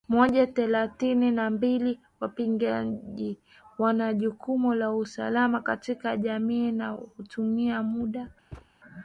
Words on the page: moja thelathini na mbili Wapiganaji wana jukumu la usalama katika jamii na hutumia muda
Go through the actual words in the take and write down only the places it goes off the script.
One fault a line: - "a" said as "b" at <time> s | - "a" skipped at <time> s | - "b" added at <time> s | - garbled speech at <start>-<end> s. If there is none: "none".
none